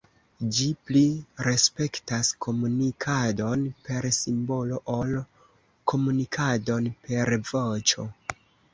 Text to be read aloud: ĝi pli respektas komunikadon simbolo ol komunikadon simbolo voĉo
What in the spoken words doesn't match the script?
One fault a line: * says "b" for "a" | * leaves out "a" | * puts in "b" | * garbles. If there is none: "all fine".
* puts in "per"
* says "per" for "simbolo"